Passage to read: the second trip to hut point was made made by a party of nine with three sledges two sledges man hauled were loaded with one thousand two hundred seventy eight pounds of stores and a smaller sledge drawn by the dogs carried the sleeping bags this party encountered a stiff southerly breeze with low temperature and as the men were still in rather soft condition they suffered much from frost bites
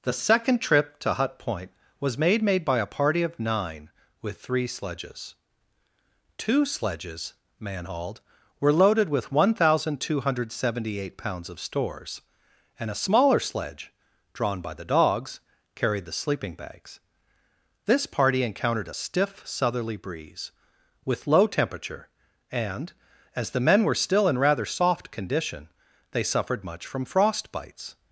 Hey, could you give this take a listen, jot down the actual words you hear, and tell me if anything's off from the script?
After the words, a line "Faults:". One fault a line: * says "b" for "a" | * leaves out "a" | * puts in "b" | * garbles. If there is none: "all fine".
the second trip to hut point was made made by a party of nine with three sledges two sledges man hauled were loaded with one thousand two hundred seventy eight pounds of stores and a smaller sledge drawn by the dogs carried the sleeping bags this party encountered a stiff southerly breeze with low temperature and as the men were still in rather soft condition they suffered much from frost bites
Faults:
all fine